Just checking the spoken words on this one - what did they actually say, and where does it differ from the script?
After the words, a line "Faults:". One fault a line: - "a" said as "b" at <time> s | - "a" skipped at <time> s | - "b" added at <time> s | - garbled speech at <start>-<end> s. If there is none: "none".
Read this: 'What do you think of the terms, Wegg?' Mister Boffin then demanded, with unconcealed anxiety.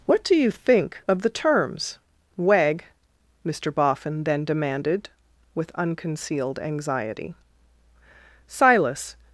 'What do you think of the terms, Wegg?' Mister Boffin then demanded, with unconcealed anxiety. Silas
Faults:
- "Silas" added at 8.5 s